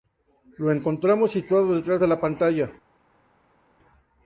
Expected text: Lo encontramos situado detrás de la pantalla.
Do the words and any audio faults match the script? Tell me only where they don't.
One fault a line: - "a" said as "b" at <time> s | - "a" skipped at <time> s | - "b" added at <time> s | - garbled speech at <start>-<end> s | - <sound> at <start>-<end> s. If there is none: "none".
none